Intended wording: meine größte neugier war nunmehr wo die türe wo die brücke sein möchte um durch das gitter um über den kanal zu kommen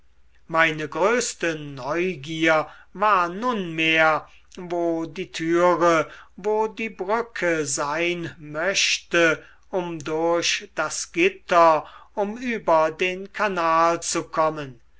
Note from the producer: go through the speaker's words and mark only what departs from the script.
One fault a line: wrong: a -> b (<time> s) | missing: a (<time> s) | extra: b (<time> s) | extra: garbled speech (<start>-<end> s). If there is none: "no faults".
no faults